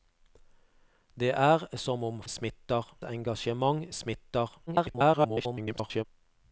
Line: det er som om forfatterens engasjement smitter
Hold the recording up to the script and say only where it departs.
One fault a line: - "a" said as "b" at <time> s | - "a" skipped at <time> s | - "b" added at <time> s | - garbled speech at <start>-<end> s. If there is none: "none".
- "forfatterens" said as "smitter" at 2.3 s
- garbled speech at 4.7-6.0 s